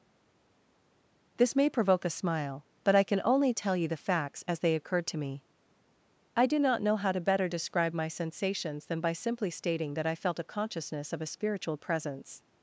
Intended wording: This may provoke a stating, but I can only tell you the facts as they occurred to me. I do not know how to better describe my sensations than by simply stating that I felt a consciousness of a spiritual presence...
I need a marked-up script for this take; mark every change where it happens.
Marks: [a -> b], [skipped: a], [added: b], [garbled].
This may provoke a [stating, -> smile] but I can only tell you the facts as they occurred to me. I do not know how to better describe my sensations than by simply stating that I felt a consciousness of a spiritual presence...